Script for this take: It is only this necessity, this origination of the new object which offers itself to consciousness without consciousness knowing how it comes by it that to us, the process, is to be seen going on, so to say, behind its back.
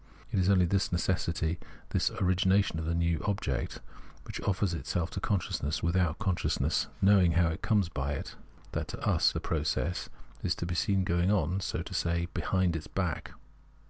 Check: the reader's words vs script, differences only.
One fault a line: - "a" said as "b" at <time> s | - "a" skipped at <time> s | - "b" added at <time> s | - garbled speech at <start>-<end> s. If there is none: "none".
none